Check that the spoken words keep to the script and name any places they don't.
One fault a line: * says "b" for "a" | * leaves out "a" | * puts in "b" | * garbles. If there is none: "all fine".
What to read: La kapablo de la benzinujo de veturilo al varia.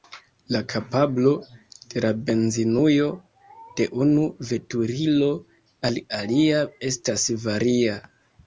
* puts in "unu"
* puts in "alia estas"